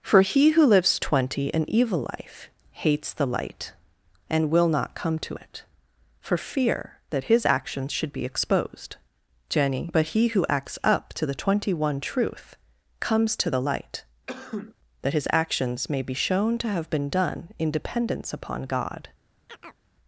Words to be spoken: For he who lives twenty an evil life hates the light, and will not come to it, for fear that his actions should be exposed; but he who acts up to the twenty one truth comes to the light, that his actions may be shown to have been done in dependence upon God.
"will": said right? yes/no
yes